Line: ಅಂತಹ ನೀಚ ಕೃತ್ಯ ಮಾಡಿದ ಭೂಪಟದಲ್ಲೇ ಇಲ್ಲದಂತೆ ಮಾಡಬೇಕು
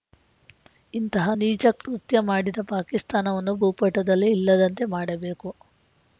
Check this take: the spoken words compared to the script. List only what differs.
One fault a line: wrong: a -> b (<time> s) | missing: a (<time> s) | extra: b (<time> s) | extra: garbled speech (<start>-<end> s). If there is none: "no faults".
wrong: ಅಂತಹ -> ಇಂತಹ (0.9 s)
extra: ಪಾಕಿಸ್ತಾನವನ್ನು (2.7 s)